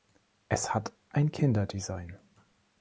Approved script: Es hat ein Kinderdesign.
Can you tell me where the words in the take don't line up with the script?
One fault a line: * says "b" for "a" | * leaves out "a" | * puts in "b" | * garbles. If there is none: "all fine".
all fine